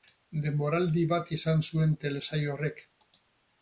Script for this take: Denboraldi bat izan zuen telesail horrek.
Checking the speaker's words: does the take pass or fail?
pass